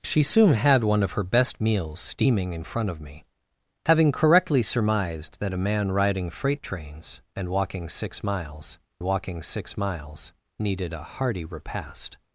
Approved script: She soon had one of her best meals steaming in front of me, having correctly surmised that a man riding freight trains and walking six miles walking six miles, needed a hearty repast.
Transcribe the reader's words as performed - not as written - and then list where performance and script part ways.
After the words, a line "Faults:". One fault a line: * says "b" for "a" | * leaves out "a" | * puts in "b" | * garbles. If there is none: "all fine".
She soon had one of her best meals steaming in front of me, having correctly surmised that a man riding freight trains and walking six miles walking six miles, needed a hearty repast.
Faults:
all fine